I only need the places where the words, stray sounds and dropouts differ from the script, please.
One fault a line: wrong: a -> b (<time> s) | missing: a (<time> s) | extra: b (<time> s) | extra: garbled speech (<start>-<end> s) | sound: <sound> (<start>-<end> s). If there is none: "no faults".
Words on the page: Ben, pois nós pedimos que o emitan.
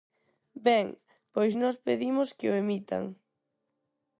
no faults